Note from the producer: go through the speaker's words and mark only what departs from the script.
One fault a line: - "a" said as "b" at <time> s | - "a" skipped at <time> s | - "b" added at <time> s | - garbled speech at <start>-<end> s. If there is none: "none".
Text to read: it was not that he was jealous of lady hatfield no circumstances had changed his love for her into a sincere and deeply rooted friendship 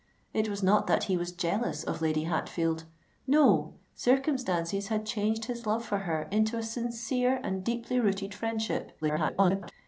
- garbled speech at 9.0-9.7 s